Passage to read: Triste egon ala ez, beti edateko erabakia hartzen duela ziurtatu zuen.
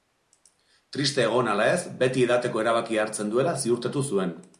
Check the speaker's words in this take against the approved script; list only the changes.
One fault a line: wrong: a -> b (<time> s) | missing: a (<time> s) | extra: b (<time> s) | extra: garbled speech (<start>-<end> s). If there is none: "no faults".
no faults